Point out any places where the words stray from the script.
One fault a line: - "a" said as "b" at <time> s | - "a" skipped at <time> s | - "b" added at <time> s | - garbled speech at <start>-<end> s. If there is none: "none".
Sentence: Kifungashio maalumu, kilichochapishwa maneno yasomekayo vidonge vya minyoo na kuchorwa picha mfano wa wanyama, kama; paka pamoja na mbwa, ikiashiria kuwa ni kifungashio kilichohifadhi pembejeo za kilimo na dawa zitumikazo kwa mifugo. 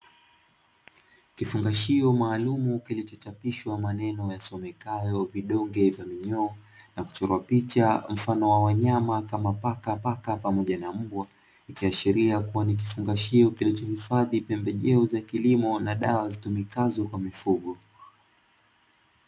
- "paka" added at 9.9 s